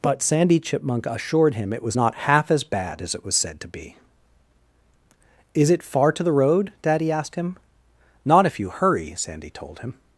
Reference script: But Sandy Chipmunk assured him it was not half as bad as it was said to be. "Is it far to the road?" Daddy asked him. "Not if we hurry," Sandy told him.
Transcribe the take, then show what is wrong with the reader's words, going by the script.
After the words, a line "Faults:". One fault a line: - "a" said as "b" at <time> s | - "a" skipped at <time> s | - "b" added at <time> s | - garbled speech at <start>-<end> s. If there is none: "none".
But Sandy Chipmunk assured him it was not half as bad as it was said to be. "Is it far to the road?" Daddy asked him. "Not if you hurry," Sandy told him.
Faults:
- "we" said as "you" at 8.6 s